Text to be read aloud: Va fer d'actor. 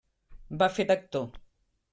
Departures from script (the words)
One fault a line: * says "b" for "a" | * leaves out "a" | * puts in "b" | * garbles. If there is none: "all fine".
all fine